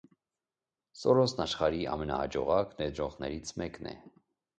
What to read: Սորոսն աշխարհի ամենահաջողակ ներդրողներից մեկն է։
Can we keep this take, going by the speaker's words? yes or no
yes